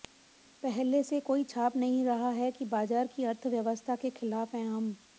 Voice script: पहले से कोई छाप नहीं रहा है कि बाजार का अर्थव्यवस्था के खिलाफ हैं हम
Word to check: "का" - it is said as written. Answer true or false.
false